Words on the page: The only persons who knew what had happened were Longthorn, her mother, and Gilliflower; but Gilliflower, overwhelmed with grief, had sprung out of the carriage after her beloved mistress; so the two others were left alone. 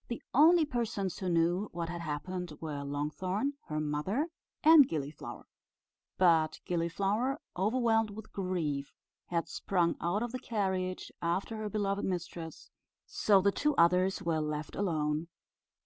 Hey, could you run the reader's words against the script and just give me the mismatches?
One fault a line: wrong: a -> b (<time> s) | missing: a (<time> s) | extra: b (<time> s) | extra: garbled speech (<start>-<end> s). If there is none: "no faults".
no faults